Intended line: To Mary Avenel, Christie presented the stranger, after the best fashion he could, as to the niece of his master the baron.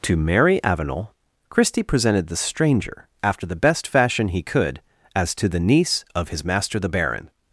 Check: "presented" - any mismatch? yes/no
no